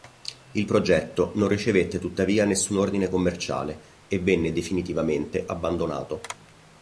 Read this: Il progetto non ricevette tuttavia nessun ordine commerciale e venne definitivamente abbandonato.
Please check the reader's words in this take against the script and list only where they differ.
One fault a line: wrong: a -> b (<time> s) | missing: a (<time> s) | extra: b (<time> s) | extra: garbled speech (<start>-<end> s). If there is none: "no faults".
no faults